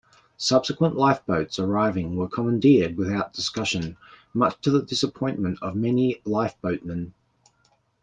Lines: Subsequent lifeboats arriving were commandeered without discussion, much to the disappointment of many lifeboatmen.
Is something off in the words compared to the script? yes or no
no